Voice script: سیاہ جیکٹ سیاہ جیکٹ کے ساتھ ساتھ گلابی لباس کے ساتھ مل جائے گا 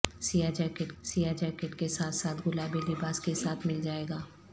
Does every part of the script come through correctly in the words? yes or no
yes